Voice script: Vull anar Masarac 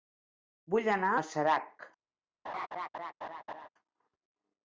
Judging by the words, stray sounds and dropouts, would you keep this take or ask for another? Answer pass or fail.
fail